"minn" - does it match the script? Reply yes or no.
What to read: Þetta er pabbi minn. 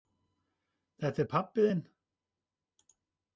no